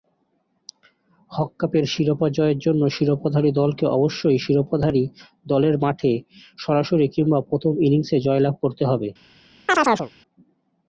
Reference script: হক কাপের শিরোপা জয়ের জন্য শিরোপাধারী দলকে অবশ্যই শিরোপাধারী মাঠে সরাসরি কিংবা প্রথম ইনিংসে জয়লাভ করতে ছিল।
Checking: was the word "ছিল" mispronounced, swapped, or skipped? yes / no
yes